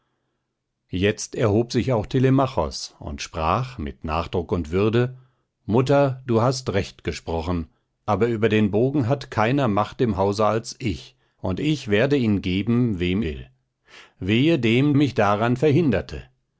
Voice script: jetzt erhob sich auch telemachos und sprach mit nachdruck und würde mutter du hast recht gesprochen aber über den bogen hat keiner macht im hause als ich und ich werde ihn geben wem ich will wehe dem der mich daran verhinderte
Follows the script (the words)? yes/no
no